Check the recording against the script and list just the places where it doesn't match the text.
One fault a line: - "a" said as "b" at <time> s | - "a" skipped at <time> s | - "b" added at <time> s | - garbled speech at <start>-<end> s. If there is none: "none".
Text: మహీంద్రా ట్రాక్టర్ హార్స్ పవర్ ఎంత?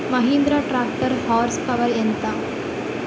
none